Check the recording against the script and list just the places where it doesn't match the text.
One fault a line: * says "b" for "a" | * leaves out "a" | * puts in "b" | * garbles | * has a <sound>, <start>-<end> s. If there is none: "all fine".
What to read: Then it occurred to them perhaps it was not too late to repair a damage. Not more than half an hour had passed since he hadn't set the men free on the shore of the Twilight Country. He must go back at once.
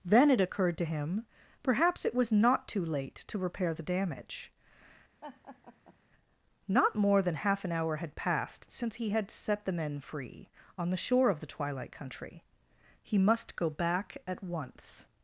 * says "him" for "them"
* says "the" for "a"
* has a laugh, 5.2-6.0 s
* says "had" for "hadn't"